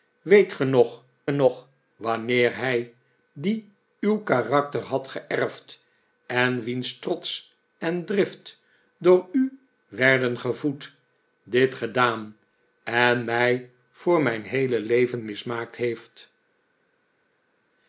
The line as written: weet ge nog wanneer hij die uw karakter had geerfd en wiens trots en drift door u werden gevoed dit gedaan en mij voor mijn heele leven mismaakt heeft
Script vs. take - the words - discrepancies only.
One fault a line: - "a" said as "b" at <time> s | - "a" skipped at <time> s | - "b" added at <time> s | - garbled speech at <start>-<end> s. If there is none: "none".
- "nog" added at 1.3 s